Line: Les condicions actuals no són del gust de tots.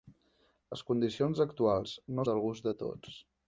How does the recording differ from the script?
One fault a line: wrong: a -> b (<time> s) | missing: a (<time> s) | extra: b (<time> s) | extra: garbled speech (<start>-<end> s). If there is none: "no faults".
missing: són (2.2 s)